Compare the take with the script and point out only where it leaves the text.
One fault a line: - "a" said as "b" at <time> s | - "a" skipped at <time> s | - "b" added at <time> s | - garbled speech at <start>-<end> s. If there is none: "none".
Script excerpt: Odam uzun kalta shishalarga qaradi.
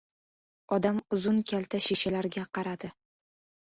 none